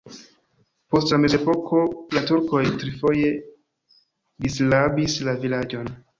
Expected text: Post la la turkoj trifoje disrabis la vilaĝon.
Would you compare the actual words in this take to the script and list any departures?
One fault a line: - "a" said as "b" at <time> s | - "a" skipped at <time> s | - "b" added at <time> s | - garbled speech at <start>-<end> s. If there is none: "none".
- "mezepoko" added at 1.2 s